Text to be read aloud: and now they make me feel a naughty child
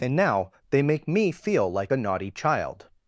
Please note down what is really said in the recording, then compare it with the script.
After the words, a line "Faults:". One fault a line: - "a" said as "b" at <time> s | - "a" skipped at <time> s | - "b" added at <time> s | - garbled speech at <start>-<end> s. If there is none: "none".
and now they make me feel like a naughty child
Faults:
- "like" added at 1.7 s